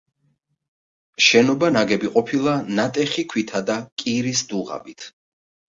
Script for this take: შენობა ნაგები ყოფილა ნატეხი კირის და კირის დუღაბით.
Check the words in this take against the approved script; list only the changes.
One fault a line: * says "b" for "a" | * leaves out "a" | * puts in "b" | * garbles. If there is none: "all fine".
* says "ქვითა" for "კირის"